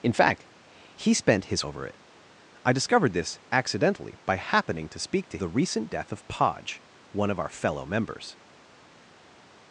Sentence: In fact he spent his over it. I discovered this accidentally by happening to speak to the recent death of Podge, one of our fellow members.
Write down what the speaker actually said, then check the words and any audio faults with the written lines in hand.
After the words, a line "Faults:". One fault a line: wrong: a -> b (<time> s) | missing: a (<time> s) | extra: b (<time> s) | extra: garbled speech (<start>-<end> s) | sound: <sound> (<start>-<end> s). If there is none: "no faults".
In fact he spent his over it. I discovered this accidentally by happening to speak to the recent death of Podge, one of our fellow members.
Faults:
no faults